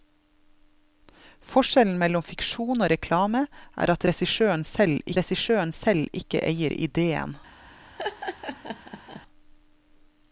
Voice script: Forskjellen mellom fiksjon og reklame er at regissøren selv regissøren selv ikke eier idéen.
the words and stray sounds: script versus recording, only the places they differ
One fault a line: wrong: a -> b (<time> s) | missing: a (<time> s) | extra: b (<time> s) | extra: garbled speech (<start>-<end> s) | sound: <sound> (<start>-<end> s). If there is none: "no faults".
sound: laugh (8.0-9.2 s)